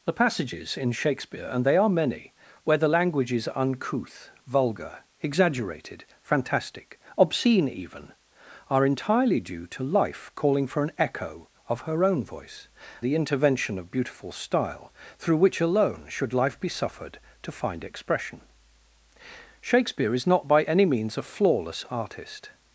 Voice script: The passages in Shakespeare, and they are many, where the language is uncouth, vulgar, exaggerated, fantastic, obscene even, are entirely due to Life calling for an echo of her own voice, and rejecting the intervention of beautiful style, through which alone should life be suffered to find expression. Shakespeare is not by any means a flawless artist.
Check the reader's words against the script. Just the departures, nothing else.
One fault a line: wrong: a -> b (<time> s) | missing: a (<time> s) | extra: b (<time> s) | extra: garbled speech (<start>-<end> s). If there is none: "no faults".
missing: and rejecting (12.7 s)